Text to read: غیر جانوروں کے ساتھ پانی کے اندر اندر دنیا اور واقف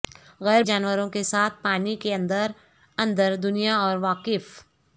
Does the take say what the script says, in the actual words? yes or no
yes